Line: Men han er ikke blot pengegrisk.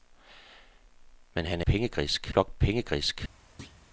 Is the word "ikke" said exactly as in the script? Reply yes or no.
no